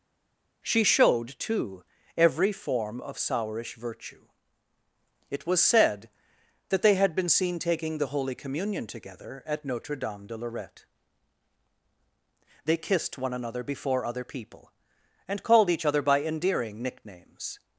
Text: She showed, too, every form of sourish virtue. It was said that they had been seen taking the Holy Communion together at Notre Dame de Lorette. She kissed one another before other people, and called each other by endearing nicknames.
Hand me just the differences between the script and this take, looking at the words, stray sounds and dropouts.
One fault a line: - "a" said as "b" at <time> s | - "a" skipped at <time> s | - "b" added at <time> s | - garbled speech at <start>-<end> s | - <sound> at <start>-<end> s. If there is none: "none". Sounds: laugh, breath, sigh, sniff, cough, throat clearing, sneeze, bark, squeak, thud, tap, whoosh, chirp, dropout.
- "She" said as "They" at 12.6 s